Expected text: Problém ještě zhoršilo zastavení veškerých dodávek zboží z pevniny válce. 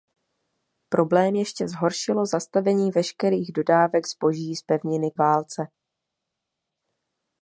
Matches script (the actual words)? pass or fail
pass